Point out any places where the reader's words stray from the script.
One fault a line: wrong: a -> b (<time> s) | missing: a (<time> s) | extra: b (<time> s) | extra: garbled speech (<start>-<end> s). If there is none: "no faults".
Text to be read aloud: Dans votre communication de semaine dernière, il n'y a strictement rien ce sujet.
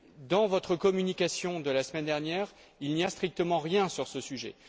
extra: la (1.7 s)
extra: sur (3.9 s)